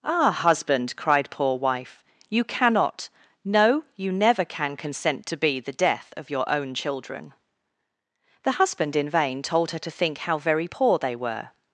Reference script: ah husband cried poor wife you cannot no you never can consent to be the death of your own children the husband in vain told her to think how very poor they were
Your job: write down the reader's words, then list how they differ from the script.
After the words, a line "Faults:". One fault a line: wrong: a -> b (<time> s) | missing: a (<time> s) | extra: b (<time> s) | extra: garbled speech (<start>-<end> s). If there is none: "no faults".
ah husband cried poor wife you cannot no you never can consent to be the death of your own children the husband in vain told her to think how very poor they were
Faults:
no faults